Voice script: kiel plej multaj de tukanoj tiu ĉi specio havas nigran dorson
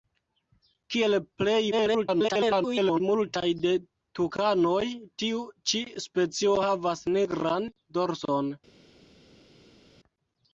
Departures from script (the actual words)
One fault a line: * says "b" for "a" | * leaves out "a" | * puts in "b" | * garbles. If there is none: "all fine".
* garbles